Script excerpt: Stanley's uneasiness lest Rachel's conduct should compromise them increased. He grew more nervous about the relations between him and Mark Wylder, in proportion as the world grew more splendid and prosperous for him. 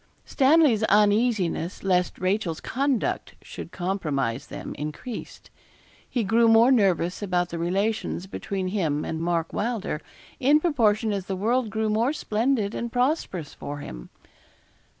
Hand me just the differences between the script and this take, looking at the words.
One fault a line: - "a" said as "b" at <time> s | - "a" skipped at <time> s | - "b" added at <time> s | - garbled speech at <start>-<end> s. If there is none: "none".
none